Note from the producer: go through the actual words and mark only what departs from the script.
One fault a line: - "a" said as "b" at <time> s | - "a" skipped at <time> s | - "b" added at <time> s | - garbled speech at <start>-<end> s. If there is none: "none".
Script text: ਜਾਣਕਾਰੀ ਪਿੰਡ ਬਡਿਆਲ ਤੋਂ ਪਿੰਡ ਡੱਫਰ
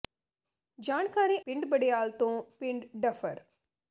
none